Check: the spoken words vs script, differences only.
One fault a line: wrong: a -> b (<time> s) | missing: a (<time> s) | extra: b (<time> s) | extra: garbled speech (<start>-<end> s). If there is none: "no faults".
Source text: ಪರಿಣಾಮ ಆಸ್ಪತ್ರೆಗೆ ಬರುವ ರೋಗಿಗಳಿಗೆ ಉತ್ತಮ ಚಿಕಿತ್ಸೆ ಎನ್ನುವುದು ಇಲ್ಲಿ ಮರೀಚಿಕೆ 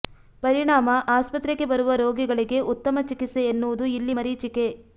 no faults